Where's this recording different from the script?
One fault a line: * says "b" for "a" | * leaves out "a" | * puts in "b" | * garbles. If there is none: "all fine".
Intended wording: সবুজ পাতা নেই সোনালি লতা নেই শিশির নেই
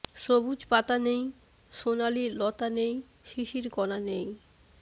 * puts in "কণা"